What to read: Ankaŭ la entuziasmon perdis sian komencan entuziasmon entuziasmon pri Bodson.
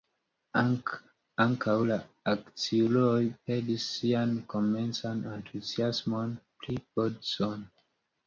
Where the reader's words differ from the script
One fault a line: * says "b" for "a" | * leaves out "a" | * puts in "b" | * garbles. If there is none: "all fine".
* says "akciuloj" for "entuziasmon"
* leaves out "entuziasmon"